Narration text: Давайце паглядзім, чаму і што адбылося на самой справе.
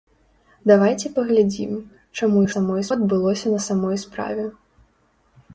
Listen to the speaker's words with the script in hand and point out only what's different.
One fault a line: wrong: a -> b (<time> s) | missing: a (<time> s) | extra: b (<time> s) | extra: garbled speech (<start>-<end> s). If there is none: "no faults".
wrong: што -> самой (2.5 s)